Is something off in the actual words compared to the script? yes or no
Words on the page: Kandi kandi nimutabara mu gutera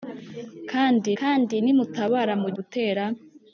no